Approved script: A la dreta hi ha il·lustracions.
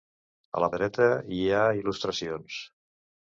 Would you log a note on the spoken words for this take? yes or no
no